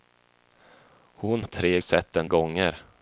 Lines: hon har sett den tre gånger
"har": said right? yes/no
no